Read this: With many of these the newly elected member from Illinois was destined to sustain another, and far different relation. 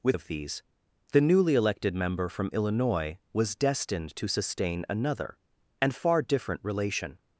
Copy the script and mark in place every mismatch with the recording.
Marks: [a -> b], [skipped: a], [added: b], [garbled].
With [skipped: many] of these the newly elected member from Illinois was destined to sustain another, and far different relation.